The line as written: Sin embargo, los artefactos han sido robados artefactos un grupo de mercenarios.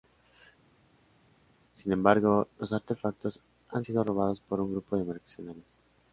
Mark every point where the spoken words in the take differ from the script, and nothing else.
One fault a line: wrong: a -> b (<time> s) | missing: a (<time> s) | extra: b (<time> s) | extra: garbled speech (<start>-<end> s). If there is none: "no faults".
wrong: artefactos -> por (4.4 s)